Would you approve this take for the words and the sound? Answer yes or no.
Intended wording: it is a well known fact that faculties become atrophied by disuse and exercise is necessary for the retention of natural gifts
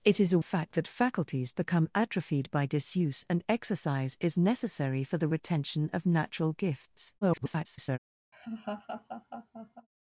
no